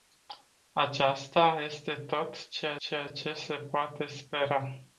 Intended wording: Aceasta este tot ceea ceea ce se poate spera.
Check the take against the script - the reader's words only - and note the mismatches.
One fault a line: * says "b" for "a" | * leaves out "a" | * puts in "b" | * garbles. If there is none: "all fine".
all fine